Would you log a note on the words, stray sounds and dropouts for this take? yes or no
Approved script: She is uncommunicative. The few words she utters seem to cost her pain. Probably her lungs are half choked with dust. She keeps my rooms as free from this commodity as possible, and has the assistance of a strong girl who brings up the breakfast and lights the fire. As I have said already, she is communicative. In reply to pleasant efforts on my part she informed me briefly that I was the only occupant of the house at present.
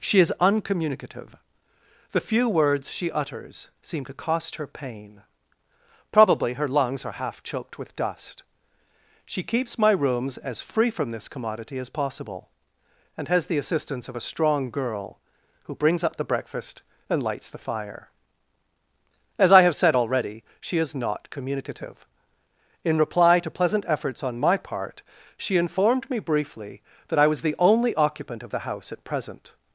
yes